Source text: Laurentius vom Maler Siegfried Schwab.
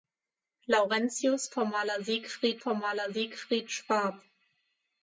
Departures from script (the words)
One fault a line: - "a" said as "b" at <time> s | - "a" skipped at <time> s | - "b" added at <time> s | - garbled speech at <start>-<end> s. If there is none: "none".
- "vom Maler Siegfried" added at 2.6 s